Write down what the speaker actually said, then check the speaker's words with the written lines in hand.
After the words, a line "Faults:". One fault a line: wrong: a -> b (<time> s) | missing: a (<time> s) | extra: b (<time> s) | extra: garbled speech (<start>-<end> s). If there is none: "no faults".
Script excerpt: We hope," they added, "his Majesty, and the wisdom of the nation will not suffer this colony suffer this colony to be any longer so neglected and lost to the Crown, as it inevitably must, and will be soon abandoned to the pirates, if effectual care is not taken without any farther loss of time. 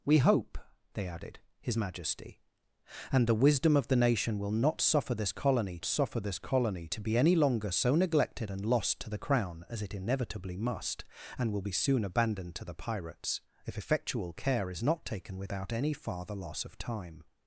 We hope," they added, "his Majesty, and the wisdom of the nation will not suffer this colony suffer this colony to be any longer so neglected and lost to the Crown, as it inevitably must, and will be soon abandoned to the pirates, if effectual care is not taken without any farther loss of time.
Faults:
no faults